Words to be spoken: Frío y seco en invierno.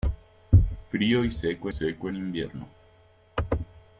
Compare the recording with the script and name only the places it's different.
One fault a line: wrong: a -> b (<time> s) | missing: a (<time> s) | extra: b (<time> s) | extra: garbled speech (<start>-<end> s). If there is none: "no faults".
extra: seco (1.7 s)